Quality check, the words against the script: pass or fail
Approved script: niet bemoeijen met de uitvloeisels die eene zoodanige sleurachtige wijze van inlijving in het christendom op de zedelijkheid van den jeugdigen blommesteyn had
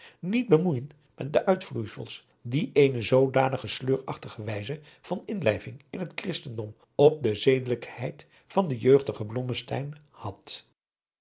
pass